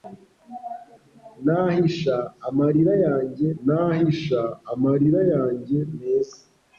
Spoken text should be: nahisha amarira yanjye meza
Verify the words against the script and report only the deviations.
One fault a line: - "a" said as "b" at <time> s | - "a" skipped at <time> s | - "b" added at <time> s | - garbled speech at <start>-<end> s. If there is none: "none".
- "nahisha amarira yanjye" added at 3.7 s